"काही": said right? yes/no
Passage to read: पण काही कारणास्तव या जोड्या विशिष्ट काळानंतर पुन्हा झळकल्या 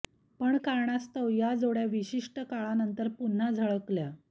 no